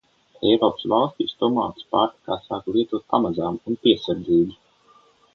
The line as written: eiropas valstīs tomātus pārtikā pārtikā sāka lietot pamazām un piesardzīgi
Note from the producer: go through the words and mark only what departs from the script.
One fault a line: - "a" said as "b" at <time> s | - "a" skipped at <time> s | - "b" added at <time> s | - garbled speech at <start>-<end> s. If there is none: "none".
- "pārtikā" skipped at 2.4 s